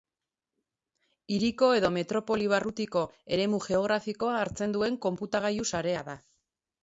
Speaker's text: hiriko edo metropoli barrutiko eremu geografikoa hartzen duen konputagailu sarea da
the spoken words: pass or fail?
pass